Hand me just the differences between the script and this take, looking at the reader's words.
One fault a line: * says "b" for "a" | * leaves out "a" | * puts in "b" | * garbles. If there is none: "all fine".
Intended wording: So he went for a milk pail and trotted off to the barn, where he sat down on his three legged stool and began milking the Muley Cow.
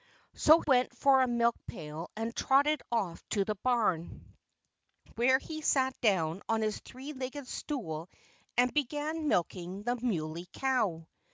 * leaves out "he"